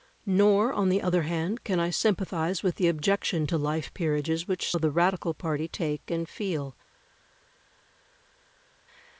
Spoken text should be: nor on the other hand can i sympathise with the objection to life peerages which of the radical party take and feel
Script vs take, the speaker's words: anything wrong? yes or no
no